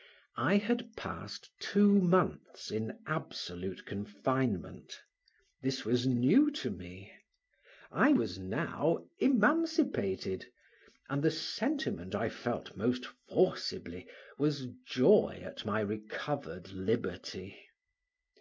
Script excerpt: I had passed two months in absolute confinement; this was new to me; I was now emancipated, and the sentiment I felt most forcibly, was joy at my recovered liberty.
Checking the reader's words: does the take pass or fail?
pass